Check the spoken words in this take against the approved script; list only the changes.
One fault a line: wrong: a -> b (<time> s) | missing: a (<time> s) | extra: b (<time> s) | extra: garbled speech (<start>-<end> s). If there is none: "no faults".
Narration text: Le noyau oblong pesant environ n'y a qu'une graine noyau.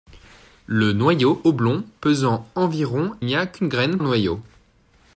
no faults